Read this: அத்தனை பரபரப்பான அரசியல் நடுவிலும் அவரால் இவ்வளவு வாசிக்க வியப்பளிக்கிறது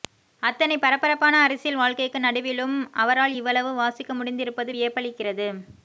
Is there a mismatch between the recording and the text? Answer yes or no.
yes